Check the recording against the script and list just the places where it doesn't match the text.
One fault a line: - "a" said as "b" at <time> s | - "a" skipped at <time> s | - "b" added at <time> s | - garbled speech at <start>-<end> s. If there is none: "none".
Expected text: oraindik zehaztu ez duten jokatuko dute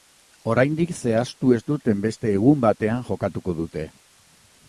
- "beste egun batean" added at 2.1 s